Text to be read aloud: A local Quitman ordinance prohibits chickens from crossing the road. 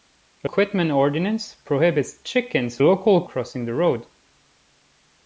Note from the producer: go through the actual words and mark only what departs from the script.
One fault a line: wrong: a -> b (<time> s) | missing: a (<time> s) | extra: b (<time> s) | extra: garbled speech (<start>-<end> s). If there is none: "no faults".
missing: local (0.5 s)
wrong: from -> local (2.8 s)